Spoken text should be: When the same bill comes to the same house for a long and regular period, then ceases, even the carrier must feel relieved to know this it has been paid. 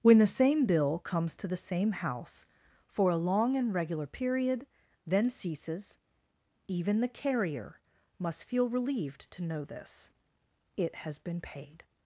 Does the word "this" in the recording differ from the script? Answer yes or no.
no